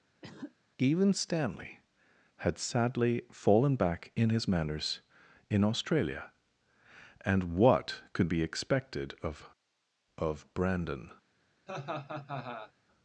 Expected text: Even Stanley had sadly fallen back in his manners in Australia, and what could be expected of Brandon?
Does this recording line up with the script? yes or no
no